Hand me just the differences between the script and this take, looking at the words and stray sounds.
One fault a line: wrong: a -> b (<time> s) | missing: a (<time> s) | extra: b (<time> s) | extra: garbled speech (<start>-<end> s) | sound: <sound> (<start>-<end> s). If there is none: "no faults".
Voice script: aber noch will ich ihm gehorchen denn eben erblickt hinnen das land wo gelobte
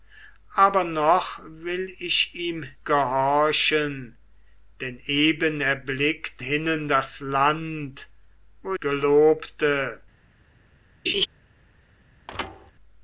sound: laugh (11.1-11.3 s)
sound: thud (12.3-12.7 s)